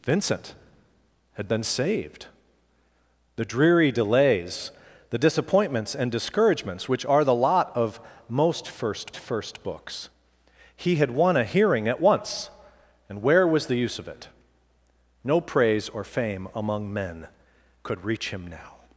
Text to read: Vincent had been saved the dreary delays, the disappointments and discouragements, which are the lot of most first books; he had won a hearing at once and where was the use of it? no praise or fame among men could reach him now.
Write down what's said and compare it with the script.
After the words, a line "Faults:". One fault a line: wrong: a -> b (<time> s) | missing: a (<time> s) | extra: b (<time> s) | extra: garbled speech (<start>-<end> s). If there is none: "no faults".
Vincent had been saved the dreary delays, the disappointments and discouragements, which are the lot of most first first books; he had won a hearing at once and where was the use of it? no praise or fame among men could reach him now.
Faults:
extra: first (9.2 s)